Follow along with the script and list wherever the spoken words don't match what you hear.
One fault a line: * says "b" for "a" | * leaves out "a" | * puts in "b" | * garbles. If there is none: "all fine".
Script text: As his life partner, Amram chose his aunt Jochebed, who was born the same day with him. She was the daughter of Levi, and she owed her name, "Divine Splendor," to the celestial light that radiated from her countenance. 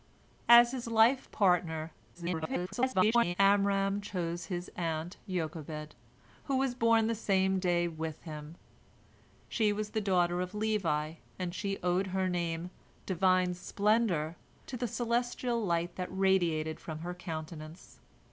* garbles